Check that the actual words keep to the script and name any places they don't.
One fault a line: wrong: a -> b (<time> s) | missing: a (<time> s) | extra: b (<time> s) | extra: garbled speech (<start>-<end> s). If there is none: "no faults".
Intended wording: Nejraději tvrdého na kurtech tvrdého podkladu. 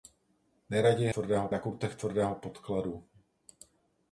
no faults